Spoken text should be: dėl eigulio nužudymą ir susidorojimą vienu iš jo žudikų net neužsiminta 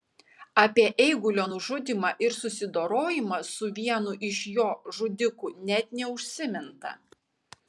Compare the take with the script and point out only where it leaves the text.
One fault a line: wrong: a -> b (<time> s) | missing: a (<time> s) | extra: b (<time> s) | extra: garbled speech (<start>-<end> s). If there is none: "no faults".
wrong: dėl -> apie (0.6 s)
extra: su (3.5 s)